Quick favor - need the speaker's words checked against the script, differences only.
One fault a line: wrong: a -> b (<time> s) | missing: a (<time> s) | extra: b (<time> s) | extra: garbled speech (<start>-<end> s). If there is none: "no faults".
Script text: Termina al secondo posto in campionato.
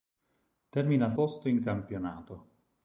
missing: secondo (1.1 s)